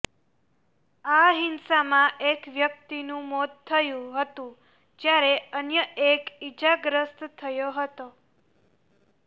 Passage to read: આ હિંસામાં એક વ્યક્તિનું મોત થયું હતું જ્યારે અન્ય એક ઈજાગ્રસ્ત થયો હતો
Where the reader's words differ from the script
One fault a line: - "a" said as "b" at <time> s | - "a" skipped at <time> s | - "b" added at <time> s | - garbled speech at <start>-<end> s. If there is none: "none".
none